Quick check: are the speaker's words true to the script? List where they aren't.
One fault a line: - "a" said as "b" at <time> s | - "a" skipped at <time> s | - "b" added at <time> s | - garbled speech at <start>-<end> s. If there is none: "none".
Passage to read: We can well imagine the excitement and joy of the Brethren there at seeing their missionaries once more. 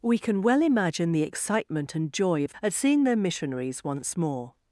- "the Brethren there" skipped at 2.5 s